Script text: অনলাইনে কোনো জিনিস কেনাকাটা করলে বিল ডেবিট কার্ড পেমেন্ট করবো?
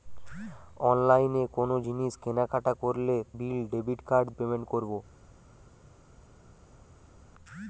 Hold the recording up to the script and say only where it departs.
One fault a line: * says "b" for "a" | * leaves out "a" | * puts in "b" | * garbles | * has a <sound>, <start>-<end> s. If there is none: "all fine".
all fine